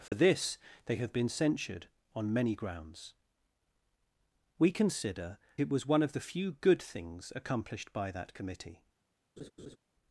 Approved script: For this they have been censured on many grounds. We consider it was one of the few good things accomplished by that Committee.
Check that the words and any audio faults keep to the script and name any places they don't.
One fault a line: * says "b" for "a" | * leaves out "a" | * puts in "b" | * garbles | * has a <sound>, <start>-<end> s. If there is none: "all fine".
* has a dropout, 0.1-0.1 s
* has a laugh, 9.4-9.8 s